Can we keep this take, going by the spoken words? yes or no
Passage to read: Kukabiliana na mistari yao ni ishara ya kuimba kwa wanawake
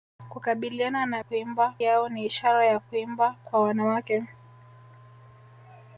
no